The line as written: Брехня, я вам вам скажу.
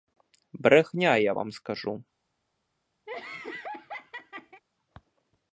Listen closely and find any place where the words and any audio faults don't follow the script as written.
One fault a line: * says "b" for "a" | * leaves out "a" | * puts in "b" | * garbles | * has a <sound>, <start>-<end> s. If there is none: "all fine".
* leaves out "вам"
* has a laugh, 3.1-4.6 s